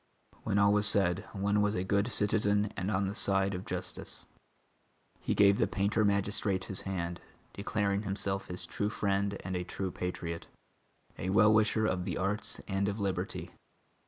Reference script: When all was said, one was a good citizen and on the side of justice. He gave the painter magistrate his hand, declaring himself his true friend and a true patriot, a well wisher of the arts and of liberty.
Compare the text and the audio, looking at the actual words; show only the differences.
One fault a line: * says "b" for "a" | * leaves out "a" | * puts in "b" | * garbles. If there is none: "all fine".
all fine